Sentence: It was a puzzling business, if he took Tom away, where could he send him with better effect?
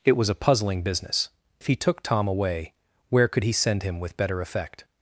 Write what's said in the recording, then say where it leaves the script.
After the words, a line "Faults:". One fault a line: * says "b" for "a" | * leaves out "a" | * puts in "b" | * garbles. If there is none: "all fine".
It was a puzzling business, if he took Tom away, where could he send him with better effect?
Faults:
all fine